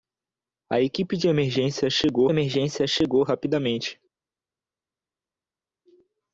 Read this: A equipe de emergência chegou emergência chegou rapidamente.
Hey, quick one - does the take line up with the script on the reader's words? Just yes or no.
yes